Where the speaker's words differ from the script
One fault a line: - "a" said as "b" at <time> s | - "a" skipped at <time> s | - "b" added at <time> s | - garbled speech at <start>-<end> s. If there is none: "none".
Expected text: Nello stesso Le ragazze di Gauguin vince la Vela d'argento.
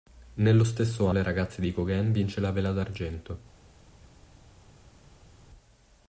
none